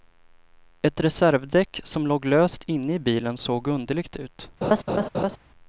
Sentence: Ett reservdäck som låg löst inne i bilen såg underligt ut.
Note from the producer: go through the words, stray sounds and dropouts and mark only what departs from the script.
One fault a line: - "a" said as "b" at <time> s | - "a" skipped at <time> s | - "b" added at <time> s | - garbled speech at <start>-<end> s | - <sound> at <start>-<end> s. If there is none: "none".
- laugh at 4.6-5.4 s